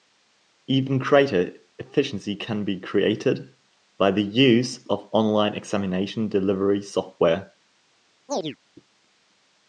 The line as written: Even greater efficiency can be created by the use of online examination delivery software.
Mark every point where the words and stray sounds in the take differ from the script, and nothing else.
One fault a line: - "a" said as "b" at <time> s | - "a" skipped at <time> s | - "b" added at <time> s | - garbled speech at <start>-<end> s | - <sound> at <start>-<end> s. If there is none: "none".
- chirp at 8.3-8.6 s